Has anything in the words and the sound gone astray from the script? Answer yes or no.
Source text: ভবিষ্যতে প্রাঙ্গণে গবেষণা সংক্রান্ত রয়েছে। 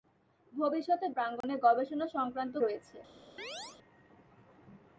yes